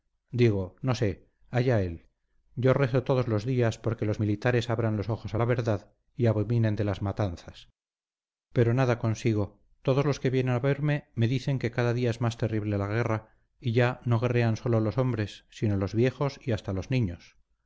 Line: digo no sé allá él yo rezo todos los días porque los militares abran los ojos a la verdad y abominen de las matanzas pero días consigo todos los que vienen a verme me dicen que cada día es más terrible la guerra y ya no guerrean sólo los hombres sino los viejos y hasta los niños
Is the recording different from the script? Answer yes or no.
yes